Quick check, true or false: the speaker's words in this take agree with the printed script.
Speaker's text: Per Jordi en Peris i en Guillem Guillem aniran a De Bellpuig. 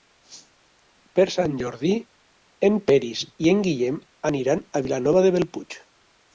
false